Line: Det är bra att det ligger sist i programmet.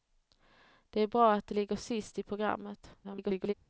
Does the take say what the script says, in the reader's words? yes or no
no